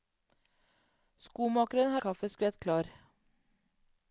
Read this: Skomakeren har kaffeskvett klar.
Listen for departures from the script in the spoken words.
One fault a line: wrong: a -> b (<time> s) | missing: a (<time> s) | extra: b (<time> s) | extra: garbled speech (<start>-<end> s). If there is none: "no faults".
no faults